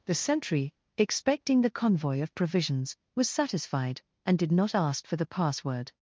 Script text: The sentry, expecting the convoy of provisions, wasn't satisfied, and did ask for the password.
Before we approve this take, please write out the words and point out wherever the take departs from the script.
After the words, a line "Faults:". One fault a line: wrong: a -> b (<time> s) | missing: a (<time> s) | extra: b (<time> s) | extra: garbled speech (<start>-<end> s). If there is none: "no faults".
The sentry, expecting the convoy of provisions, was satisfied, and did not ask for the password.
Faults:
wrong: wasn't -> was (3.1 s)
extra: not (4.5 s)